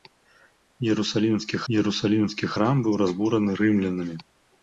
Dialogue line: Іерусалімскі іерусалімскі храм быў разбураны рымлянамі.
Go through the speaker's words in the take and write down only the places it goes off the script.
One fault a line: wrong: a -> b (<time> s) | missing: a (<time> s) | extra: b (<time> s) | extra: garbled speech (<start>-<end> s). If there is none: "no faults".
no faults